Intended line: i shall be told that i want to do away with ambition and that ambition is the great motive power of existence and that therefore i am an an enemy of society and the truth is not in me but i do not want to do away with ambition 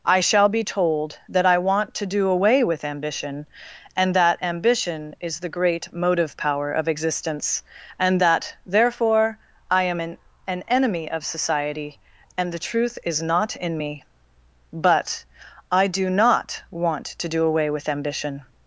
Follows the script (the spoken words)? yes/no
yes